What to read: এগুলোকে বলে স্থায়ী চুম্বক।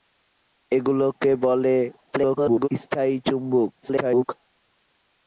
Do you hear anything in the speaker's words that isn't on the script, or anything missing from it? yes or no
yes